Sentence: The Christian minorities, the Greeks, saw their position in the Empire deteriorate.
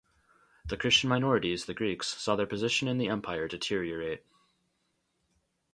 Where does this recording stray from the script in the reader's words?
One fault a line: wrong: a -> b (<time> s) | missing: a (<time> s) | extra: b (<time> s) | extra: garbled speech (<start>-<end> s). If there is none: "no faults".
no faults